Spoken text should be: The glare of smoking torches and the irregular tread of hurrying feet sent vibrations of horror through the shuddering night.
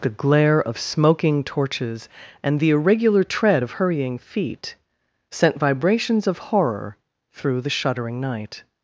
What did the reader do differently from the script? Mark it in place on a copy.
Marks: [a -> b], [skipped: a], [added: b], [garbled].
The glare of smoking torches and the irregular tread of hurrying feet sent vibrations of horror through the shuddering night.